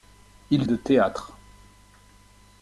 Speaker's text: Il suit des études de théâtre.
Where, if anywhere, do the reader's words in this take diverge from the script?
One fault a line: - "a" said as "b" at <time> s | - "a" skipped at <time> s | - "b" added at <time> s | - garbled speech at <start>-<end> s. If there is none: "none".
- "suit des études" skipped at 0.7 s